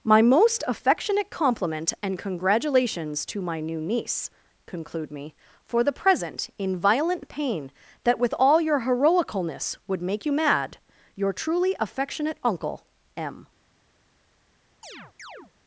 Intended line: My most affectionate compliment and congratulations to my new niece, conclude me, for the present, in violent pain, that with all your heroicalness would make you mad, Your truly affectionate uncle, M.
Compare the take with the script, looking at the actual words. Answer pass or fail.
pass